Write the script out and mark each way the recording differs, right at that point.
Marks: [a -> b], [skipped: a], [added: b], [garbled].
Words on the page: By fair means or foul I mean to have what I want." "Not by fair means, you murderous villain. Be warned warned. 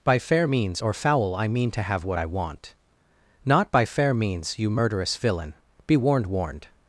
By fair means or foul I mean to have what I want." "Not by fair means, you murderous villain. Be warned warned.